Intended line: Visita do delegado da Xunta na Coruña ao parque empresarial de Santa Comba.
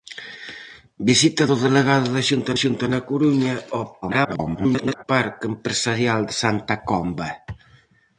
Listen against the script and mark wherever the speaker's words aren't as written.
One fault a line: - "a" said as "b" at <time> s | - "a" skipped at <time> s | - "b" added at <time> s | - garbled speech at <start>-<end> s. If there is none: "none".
- "Xunta" added at 2.6 s
- garbled speech at 4.0-5.0 s